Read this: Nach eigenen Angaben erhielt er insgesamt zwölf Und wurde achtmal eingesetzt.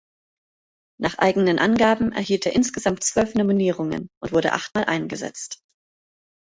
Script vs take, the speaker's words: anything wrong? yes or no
yes